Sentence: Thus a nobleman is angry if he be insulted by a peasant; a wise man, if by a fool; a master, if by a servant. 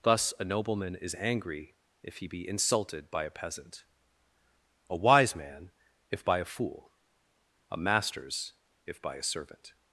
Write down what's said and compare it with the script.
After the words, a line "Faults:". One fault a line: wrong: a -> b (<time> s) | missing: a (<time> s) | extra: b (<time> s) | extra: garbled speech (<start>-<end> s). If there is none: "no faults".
Thus a nobleman is angry if he be insulted by a peasant; a wise man, if by a fool; a masters, if by a servant.
Faults:
wrong: master -> masters (7.8 s)